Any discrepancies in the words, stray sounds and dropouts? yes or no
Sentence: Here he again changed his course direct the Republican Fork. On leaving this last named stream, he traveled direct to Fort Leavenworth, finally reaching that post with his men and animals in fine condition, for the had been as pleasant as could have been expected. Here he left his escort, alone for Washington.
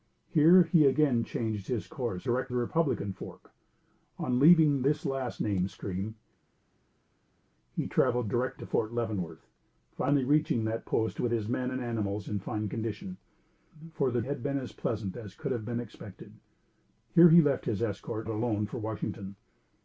no